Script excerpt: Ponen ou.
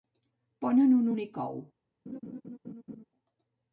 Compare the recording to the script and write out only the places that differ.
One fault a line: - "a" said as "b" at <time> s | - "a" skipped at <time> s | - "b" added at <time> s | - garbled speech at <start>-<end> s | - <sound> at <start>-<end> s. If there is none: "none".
- "un únic" added at 1.0 s
- laugh at 2.1-3.0 s